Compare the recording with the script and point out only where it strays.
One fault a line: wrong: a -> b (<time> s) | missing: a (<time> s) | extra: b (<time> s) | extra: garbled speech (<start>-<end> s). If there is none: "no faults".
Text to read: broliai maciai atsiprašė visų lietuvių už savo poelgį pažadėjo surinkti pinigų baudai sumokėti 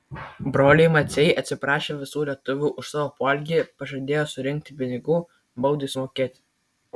no faults